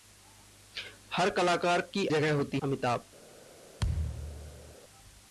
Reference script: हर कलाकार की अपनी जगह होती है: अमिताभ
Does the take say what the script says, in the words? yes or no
no